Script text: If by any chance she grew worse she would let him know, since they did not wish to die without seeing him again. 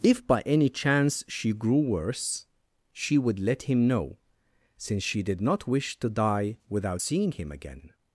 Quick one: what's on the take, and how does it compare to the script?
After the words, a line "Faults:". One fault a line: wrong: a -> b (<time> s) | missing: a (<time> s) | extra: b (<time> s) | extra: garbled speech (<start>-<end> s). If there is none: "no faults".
If by any chance she grew worse she would let him know, since she did not wish to die without seeing him again.
Faults:
wrong: they -> she (5.0 s)